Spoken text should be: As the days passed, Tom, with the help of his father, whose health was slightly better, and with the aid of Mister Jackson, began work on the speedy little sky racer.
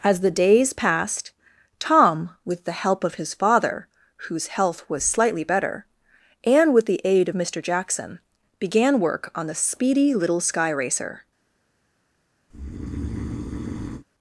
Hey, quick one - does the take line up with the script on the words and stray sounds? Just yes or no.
no